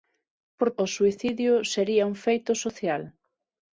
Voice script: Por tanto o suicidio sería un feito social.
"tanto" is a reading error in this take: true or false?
true